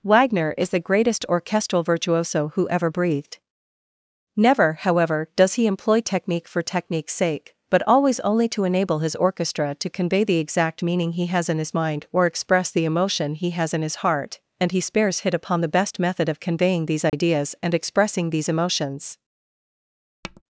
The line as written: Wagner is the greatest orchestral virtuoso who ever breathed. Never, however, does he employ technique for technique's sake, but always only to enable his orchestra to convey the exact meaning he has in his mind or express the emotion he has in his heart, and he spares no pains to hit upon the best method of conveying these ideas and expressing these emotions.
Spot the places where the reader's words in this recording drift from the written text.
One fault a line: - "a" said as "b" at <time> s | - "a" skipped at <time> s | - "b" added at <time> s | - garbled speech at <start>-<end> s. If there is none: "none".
- "no pains to" skipped at 15.2 s